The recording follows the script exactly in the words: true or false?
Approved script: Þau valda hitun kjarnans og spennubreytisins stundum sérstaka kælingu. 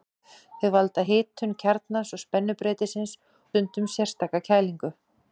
true